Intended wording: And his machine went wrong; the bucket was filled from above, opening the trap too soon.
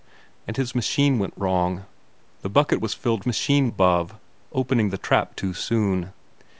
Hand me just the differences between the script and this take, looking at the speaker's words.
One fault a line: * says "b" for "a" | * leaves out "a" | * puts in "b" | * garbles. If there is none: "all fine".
* says "machine" for "from"